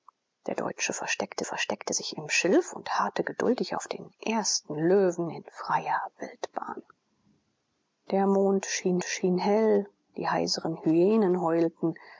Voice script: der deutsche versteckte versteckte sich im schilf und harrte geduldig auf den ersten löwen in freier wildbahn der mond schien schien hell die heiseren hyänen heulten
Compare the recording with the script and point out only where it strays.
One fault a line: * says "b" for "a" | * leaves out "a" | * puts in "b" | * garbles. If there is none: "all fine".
all fine